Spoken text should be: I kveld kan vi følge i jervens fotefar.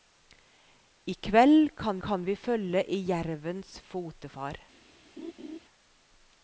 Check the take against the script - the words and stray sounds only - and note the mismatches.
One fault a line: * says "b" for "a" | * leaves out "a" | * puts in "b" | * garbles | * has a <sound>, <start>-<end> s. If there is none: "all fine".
* puts in "kan"
* has a laugh, 5.2-5.6 s